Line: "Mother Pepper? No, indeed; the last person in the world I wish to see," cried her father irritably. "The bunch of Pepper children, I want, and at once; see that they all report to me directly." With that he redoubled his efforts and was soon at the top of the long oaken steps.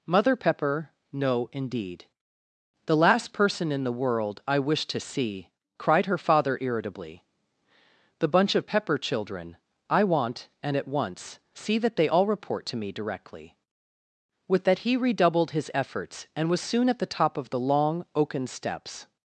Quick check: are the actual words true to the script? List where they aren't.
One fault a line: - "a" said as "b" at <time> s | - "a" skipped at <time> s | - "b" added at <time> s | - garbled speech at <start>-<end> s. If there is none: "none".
none